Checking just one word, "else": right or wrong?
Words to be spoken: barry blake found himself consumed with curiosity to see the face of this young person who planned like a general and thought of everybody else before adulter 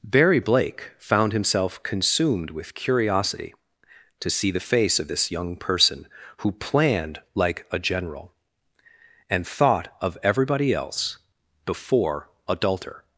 right